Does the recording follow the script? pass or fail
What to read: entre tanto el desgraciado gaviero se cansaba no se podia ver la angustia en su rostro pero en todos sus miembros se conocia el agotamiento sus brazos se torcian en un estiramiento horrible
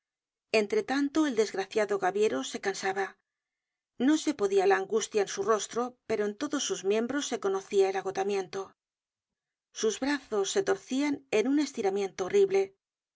fail